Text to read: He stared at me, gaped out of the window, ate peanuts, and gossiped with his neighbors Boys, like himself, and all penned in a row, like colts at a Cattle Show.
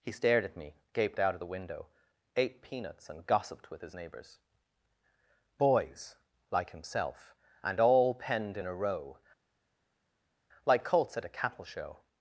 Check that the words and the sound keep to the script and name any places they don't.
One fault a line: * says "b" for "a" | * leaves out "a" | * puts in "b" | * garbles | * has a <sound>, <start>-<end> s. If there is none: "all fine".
all fine